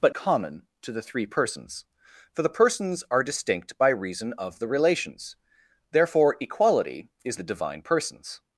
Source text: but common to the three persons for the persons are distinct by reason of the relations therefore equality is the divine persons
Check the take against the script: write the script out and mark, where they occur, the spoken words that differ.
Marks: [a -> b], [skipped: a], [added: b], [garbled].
but common to the three persons for the persons are distinct by reason of the relations therefore equality is the divine persons